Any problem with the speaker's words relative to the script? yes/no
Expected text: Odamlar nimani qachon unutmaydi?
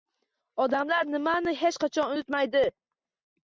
yes